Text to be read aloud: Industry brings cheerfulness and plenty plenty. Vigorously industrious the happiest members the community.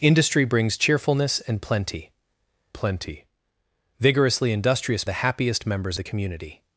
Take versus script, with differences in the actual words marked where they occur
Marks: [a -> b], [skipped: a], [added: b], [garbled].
Industry brings cheerfulness and plenty plenty. Vigorously industrious the happiest members the community.